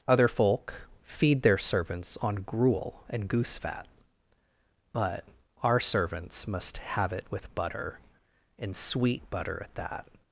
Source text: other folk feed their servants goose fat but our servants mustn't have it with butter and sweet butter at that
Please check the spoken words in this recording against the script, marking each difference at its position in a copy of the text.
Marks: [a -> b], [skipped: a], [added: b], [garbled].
other folk feed their servants [added: on gruel and] goose fat but our servants [mustn't -> must] have it with butter and sweet butter at that